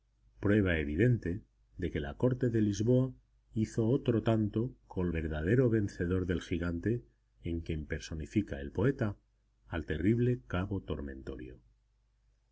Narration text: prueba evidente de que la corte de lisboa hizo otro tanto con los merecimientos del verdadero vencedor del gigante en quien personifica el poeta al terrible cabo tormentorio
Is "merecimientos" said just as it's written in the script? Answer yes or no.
no